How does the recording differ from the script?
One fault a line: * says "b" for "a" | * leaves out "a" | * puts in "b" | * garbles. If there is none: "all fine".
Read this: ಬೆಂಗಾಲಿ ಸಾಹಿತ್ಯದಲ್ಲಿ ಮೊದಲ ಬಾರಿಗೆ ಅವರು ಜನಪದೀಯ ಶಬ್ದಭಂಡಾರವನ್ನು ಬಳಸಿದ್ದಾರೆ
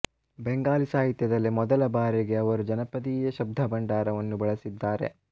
all fine